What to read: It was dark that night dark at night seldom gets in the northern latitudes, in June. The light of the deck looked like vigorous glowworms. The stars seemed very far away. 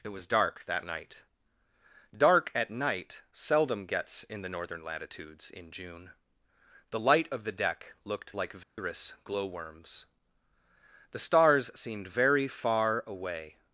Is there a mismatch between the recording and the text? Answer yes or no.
no